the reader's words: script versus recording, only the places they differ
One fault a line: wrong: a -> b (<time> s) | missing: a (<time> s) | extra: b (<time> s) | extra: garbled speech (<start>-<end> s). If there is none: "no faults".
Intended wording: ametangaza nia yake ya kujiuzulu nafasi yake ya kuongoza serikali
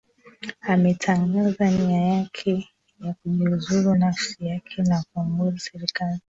no faults